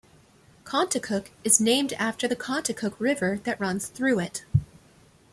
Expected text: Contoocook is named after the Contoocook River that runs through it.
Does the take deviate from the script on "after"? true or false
false